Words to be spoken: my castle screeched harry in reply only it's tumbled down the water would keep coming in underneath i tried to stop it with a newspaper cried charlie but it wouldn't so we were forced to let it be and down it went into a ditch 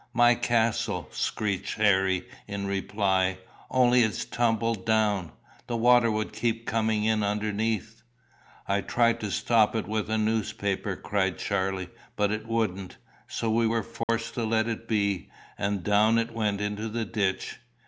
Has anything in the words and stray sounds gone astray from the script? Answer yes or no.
yes